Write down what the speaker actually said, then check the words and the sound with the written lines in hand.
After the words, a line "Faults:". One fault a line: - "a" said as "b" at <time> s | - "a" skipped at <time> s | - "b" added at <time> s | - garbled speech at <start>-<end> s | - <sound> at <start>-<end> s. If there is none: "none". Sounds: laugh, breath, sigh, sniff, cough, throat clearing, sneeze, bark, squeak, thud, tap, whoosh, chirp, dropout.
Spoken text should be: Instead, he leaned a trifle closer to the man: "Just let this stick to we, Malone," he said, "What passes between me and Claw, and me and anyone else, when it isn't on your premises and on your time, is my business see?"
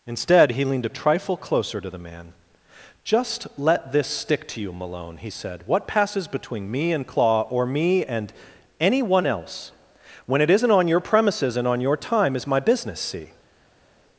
Instead, he leaned a trifle closer to the man: "Just let this stick to you, Malone," he said, "What passes between me and Claw, or me and anyone else, when it isn't on your premises and on your time, is my business see?"
Faults:
- "we" said as "you" at 4.6 s
- "and" said as "or" at 7.4 s